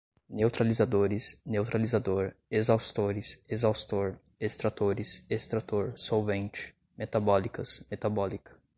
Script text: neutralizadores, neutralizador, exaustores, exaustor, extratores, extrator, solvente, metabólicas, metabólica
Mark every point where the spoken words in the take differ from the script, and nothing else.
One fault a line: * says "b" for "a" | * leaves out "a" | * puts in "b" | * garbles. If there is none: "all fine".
all fine